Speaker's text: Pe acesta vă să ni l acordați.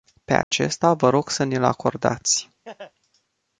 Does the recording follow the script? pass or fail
fail